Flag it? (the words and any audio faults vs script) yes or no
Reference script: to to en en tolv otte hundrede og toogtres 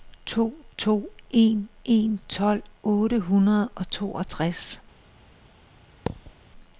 yes